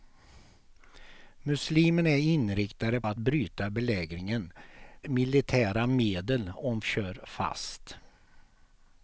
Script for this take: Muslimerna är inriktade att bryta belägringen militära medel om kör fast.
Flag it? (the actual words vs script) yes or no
no